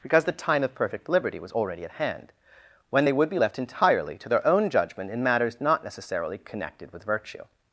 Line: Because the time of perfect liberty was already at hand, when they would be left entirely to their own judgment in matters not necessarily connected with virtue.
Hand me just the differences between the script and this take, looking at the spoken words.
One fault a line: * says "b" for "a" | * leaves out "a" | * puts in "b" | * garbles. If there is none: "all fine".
all fine